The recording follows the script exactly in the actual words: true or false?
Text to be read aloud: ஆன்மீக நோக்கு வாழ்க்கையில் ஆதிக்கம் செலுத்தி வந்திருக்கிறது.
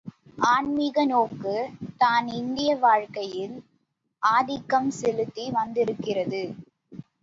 false